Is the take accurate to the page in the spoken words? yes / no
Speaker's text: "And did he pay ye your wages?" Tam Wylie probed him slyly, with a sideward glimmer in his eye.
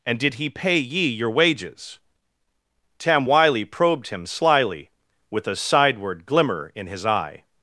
yes